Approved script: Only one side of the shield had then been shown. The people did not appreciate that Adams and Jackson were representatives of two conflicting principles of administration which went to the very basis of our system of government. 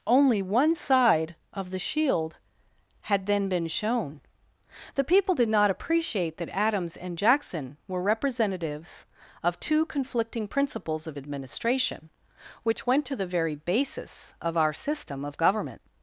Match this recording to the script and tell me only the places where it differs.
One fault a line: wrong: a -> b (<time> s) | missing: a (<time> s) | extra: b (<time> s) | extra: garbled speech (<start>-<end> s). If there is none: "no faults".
no faults